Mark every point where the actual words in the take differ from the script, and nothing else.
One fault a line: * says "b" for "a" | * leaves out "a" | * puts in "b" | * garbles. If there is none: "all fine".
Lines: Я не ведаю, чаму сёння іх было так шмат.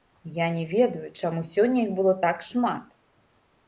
all fine